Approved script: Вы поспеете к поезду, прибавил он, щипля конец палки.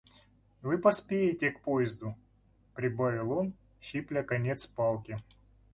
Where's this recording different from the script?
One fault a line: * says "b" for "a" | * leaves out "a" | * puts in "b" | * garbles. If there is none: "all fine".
all fine